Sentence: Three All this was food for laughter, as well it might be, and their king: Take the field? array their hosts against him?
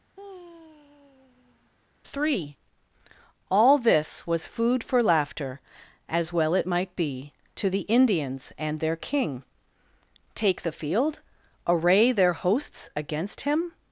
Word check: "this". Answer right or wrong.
right